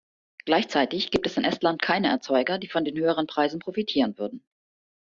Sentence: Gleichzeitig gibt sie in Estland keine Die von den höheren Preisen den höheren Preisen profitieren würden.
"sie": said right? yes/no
no